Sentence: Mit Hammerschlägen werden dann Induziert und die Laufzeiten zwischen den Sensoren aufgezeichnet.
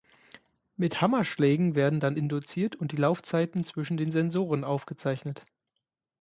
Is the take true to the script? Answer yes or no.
yes